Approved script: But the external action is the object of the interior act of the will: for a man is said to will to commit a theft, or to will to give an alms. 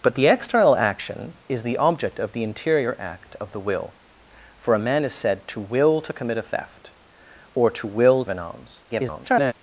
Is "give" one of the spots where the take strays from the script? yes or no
yes